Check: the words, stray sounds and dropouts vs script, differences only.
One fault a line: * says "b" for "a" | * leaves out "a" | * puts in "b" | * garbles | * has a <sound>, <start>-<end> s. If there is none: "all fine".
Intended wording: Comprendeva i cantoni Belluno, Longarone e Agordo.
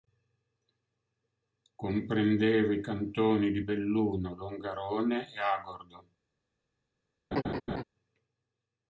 * puts in "di"
* has a laugh, 7.3-7.8 s